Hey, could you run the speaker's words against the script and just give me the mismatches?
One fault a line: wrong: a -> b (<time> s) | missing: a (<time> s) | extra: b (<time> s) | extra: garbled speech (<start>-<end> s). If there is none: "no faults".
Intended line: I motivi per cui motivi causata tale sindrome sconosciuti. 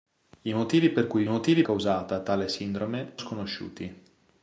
no faults